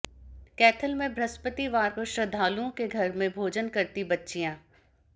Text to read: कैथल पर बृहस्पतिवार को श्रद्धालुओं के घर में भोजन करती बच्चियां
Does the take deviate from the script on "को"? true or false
false